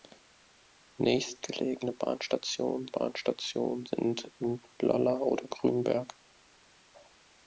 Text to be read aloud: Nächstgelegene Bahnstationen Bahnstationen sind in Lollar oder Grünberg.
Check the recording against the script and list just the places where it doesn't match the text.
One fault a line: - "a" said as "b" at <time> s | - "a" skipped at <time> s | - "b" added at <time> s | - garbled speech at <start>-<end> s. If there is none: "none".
none